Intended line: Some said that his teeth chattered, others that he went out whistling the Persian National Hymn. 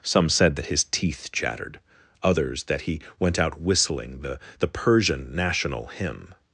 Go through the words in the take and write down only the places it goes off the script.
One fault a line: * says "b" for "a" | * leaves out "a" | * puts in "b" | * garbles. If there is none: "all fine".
* puts in "the"